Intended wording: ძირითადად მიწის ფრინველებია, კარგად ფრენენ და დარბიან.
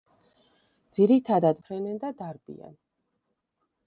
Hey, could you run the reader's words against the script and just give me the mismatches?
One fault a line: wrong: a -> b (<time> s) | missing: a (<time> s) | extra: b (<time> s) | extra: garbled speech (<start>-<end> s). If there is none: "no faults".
missing: მიწის ფრინველებია კარგად (1.6 s)